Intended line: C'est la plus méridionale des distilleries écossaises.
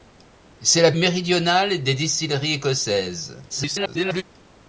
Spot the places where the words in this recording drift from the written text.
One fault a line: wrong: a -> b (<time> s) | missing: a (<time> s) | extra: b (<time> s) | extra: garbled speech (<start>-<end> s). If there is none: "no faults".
missing: plus (0.9 s)
extra: garbled speech (3.5-4.2 s)